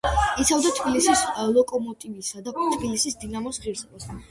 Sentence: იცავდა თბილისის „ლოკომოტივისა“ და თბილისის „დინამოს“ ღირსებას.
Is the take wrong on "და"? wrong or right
right